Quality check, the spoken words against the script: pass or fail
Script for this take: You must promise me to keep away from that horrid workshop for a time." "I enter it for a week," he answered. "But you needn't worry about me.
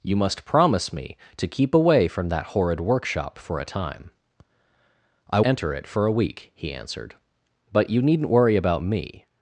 pass